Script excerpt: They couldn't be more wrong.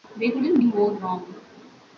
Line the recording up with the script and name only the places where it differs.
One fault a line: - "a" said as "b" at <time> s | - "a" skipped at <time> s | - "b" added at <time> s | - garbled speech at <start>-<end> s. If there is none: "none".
- "be" skipped at 0.6 s